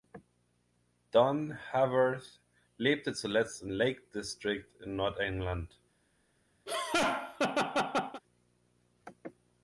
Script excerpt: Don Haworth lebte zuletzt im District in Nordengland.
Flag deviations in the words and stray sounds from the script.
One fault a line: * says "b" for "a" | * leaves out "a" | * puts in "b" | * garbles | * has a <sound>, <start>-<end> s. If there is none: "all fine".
* puts in "Lake"
* has a laugh, 6.7-8.2 s